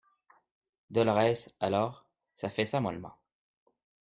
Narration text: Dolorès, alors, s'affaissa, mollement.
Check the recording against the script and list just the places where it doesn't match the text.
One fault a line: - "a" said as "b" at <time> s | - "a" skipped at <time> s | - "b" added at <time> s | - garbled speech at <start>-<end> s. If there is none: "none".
none